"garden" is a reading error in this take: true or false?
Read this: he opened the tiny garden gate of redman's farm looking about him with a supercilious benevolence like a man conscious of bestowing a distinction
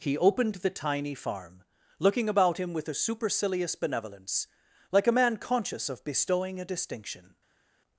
true